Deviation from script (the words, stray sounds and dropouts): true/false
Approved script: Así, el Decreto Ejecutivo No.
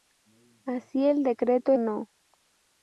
true